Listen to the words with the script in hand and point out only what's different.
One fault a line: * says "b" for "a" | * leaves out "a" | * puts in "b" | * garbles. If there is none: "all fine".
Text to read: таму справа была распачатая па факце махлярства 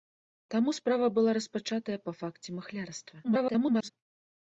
* garbles